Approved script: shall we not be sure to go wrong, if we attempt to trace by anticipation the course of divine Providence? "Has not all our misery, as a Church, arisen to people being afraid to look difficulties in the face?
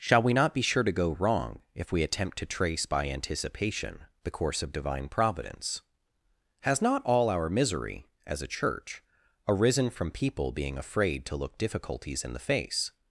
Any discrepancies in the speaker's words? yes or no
yes